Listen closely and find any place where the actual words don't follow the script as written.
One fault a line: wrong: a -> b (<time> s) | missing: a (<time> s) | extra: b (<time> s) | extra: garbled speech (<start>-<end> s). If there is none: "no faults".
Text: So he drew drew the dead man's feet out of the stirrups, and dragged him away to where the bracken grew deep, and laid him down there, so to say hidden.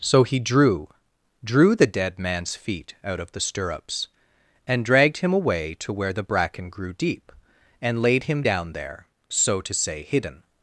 no faults